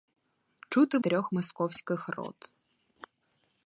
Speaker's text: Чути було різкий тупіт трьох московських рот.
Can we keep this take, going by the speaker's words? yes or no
no